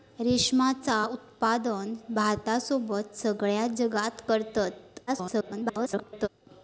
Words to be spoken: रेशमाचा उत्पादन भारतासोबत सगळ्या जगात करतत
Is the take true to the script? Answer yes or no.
no